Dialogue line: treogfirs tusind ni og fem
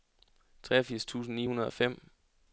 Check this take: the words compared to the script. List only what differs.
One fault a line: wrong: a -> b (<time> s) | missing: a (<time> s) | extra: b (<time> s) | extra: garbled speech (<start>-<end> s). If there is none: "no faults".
extra: hundrede (1.5 s)